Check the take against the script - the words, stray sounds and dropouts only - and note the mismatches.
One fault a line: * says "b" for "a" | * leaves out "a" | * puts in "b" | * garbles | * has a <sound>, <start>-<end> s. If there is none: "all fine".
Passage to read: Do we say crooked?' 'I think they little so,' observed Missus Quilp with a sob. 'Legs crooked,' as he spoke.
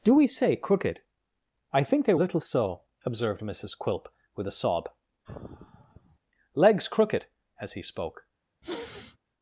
* has a sigh, 5.2-6.2 s
* has a sniff, 8.6-9.2 s